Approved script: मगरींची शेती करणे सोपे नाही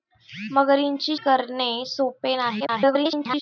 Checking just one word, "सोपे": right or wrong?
right